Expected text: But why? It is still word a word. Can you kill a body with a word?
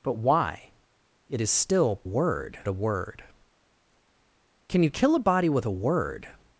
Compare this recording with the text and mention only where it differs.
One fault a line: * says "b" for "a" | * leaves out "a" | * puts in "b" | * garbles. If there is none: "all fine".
all fine